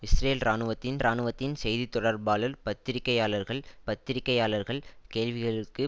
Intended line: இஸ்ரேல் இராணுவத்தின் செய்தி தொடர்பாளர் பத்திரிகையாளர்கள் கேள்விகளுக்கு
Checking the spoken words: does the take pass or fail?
fail